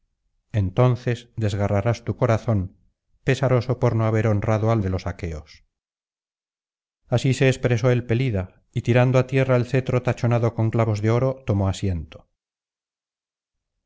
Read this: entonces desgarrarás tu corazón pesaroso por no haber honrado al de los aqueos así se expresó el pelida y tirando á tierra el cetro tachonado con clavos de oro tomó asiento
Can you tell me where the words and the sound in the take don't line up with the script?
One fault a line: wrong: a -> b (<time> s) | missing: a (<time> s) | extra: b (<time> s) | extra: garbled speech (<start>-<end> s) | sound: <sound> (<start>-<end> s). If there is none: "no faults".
no faults